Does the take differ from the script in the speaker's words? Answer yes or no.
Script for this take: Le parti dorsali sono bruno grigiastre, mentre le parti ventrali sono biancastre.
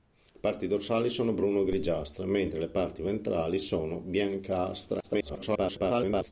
yes